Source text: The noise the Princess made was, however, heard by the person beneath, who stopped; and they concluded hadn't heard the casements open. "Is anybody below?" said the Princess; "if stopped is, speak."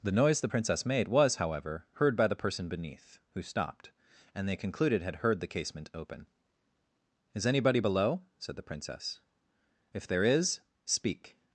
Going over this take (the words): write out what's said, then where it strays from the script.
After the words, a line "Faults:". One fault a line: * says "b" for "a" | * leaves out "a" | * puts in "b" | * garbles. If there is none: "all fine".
The noise the Princess made was, however, heard by the person beneath, who stopped; and they concluded had heard the casement open. "Is anybody below?" said the Princess; "if there is, speak."
Faults:
* says "had" for "hadn't"
* says "casement" for "casements"
* says "there" for "stopped"